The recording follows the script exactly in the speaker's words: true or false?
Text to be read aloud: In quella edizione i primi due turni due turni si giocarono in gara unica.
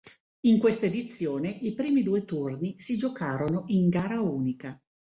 false